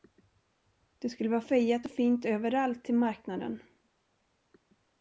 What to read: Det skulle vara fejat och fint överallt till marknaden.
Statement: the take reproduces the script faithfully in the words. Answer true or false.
true